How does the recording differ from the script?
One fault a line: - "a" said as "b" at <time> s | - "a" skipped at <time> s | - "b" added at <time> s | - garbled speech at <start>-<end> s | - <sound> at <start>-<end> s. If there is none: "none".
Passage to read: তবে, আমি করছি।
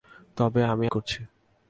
none